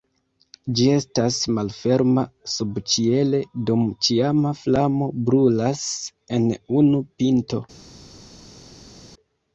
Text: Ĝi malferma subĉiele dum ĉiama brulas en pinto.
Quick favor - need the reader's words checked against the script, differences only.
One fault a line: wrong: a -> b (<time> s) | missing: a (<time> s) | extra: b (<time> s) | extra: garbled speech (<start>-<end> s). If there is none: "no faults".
extra: estas (0.9 s)
extra: flamo (4.6 s)
extra: unu (6.8 s)